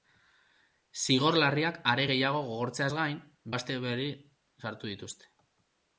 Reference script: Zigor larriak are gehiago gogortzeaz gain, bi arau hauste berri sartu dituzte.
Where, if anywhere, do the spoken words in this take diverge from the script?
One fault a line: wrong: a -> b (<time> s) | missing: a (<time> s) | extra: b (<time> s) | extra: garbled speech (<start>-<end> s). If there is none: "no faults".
missing: bi arau (3.2 s)